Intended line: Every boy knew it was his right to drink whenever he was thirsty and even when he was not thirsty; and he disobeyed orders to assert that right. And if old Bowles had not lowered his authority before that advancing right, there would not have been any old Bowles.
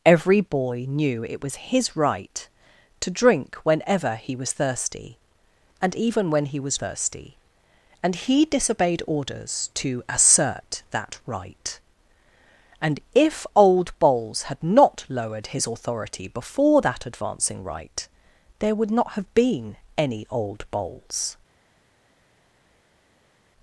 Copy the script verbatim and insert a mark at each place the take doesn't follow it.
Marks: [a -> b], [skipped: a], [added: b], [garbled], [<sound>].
Every boy knew it was his right to drink whenever he was thirsty and even when he was [skipped: not] thirsty; and he disobeyed orders to assert that right. And if old Bowles had not lowered his authority before that advancing right, there would not have been any old Bowles.